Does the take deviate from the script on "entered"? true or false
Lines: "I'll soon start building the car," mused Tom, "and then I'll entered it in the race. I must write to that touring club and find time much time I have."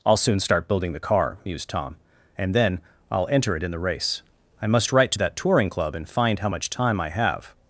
true